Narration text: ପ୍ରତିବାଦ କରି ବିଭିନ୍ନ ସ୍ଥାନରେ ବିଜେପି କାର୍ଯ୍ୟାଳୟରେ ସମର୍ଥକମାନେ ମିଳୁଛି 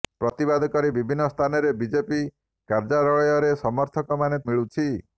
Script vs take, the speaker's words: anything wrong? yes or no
no